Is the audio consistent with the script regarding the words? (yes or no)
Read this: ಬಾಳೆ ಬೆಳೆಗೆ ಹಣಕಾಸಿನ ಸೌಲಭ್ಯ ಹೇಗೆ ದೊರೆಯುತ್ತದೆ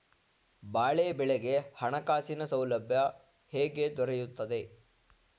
yes